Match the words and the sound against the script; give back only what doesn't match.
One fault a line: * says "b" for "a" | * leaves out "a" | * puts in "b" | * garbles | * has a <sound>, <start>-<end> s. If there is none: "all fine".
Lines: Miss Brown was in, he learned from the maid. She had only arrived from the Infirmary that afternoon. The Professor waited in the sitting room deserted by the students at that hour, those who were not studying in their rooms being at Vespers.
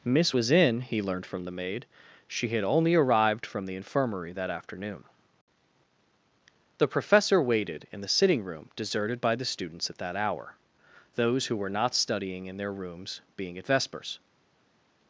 * leaves out "Brown"